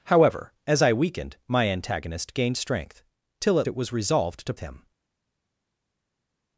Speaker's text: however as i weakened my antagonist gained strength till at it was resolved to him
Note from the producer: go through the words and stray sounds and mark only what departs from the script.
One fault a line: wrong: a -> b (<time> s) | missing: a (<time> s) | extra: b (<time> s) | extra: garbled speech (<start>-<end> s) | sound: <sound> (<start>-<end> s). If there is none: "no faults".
no faults